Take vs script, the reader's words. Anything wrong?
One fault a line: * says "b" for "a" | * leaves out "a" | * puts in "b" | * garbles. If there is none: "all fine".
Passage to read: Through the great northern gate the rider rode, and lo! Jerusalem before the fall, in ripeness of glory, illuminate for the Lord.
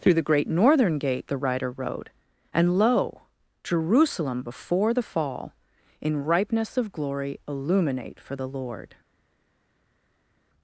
all fine